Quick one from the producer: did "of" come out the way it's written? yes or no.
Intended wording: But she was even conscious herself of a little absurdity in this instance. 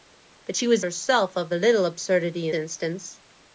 yes